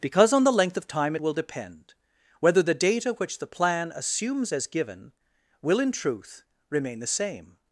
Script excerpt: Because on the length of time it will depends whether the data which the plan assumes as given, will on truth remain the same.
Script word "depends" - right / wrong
wrong